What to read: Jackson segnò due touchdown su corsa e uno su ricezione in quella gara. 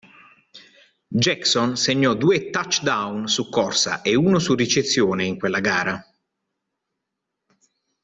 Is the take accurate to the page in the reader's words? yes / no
yes